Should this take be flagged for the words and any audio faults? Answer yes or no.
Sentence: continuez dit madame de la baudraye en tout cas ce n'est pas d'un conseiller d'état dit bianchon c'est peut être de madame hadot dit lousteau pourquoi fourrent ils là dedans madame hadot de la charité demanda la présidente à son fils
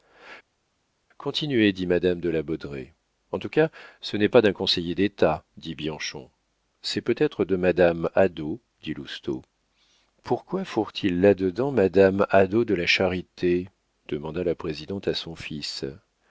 no